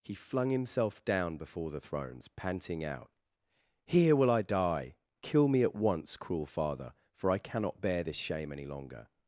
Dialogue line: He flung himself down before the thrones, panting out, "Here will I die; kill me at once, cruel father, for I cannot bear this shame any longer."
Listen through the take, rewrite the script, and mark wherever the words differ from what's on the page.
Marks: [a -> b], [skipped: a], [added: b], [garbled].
He flung himself down before the thrones, panting out, "Here will I die; kill me at once, cruel father, for I cannot bear this shame any longer."